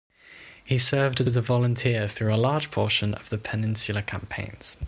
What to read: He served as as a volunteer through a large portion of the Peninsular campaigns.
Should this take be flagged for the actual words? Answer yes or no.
no